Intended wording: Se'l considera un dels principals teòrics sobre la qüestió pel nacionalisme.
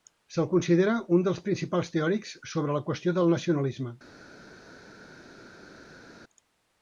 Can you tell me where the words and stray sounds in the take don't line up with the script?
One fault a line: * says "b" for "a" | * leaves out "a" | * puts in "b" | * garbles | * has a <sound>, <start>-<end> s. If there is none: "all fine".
* says "del" for "pel"